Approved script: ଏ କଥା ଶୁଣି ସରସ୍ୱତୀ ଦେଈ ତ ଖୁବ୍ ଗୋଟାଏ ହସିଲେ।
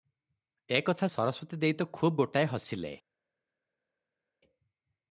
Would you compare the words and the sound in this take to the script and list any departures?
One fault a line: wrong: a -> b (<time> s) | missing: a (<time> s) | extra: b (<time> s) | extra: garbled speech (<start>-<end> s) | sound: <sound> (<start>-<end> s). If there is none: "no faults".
missing: ଶୁଣି (1.1 s)